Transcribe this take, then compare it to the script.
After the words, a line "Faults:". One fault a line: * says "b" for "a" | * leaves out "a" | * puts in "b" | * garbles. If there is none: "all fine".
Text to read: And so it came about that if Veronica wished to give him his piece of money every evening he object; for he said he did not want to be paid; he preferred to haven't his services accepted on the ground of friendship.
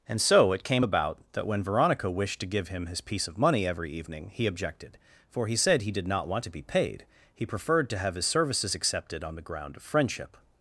And so it came about that when Veronica wished to give him his piece of money every evening he objected; for he said he did not want to be paid; he preferred to have his services accepted on the ground of friendship.
Faults:
* says "when" for "if"
* says "objected" for "object"
* says "have" for "haven't"